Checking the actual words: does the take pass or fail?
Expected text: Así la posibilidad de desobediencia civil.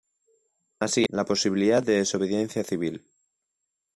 pass